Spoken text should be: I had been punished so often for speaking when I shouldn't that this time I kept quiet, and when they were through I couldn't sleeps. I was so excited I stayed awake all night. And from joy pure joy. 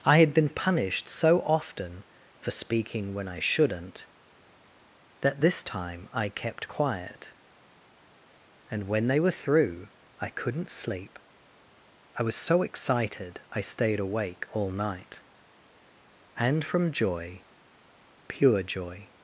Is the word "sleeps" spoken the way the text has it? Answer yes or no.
no